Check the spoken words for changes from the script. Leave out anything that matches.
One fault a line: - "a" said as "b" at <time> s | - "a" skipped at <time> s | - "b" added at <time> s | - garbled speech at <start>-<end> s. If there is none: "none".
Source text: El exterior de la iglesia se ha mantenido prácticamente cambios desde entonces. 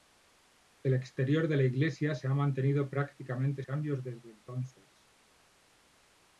none